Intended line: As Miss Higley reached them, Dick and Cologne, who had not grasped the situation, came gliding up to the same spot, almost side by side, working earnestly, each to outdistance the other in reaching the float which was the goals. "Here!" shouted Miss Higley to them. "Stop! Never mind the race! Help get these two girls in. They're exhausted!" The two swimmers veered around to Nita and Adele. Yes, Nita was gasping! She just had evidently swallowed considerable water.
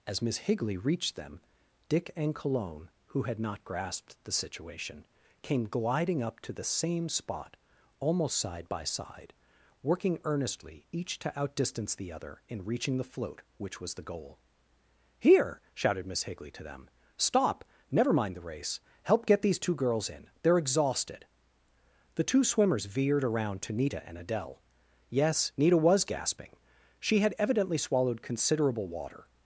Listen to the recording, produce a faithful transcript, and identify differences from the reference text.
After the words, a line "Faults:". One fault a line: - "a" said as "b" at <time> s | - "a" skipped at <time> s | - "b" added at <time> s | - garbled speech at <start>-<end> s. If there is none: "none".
As Miss Higley reached them, Dick and Cologne, who had not grasped the situation, came gliding up to the same spot, almost side by side, working earnestly, each to outdistance the other in reaching the float which was the goal. "Here!" shouted Miss Higley to them. "Stop! Never mind the race! Help get these two girls in. They're exhausted!" The two swimmers veered around to Nita and Adele. Yes, Nita was gasping! She had evidently swallowed considerable water.
Faults:
- "goals" said as "goal" at 14.0 s
- "just" skipped at 27.2 s